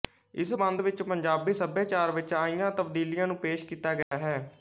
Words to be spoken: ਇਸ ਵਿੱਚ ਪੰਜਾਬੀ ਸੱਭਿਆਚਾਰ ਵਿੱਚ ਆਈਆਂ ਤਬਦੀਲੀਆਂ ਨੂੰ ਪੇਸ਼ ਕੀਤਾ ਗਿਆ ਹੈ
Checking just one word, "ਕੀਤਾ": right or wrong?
right